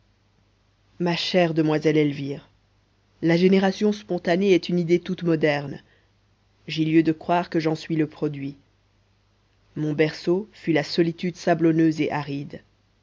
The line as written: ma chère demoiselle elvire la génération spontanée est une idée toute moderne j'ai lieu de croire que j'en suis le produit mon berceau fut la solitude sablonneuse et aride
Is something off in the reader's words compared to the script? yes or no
no